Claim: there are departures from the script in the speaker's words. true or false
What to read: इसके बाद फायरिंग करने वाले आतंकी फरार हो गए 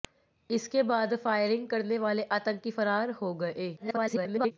true